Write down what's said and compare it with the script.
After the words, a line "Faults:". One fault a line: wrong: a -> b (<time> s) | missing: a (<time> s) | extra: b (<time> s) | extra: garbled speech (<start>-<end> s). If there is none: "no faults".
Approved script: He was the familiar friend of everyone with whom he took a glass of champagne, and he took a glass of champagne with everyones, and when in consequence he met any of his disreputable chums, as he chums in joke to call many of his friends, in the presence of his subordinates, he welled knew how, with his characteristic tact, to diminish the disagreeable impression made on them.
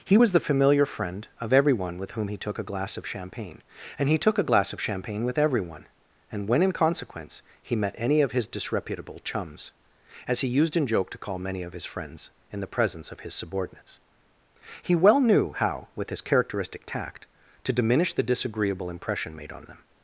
He was the familiar friend of everyone with whom he took a glass of champagne, and he took a glass of champagne with everyone, and when in consequence he met any of his disreputable chums, as he used in joke to call many of his friends, in the presence of his subordinates, he well knew how, with his characteristic tact, to diminish the disagreeable impression made on them.
Faults:
wrong: everyones -> everyone (5.4 s)
wrong: chums -> used (10.5 s)
wrong: welled -> well (15.0 s)